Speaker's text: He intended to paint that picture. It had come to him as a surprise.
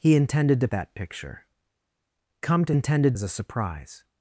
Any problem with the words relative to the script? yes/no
yes